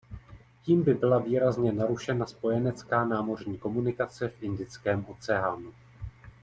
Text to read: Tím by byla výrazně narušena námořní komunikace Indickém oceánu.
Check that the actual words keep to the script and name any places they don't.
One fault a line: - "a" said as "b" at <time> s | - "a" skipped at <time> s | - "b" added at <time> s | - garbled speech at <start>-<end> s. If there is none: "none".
- "spojenecká" added at 2.2 s
- "v" added at 4.3 s